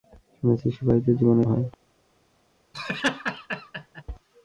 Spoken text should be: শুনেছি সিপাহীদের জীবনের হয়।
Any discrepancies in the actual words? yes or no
no